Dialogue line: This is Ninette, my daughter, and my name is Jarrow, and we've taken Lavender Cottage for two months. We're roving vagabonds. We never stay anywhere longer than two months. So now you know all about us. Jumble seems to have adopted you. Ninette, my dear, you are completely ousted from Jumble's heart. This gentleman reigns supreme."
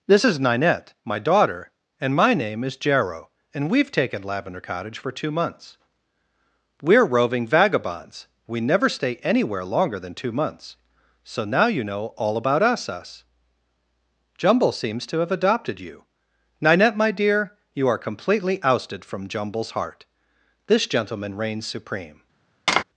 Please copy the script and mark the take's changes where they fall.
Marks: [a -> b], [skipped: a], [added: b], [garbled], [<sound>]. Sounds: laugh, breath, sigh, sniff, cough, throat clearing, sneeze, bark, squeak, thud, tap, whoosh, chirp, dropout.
This is Ninette, my daughter, and my name is Jarrow, and we've taken Lavender Cottage for two months. We're roving vagabonds. We never stay anywhere longer than two months. So now you know all about us. [added: us] Jumble seems to have adopted you. Ninette, my dear, you are completely ousted from Jumble's heart. This gentleman reigns supreme." [tap]